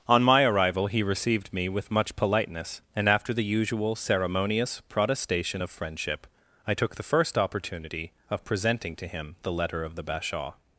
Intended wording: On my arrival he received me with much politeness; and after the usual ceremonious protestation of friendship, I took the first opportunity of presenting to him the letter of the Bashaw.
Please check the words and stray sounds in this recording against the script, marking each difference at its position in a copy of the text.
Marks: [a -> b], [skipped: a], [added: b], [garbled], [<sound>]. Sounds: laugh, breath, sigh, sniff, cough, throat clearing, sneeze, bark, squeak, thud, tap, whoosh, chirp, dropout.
On my arrival he received me with much politeness; and after the usual ceremonious protestation of friendship, I took the first opportunity of presenting to him the letter of the Bashaw.